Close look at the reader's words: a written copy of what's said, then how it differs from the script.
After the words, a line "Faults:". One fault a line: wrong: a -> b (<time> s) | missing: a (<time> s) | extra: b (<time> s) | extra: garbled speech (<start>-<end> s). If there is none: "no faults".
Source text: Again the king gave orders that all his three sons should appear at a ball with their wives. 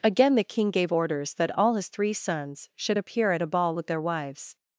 Again the king gave orders that all his three sons should appear at a ball with their wives.
Faults:
no faults